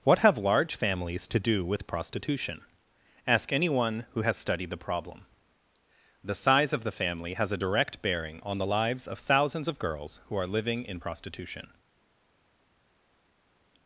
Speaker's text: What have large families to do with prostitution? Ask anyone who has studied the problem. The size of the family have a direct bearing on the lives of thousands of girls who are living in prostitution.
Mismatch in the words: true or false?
true